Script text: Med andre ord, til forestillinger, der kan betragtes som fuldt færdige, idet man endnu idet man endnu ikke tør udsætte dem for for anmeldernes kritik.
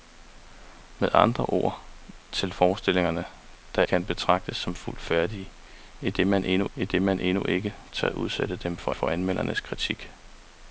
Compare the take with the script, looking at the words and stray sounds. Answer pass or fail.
pass